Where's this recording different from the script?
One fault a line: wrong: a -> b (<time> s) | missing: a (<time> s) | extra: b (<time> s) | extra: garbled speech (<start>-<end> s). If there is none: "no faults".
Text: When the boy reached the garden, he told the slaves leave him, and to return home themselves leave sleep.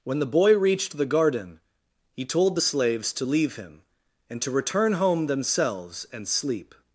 extra: to (3.1 s)
wrong: leave -> and (6.1 s)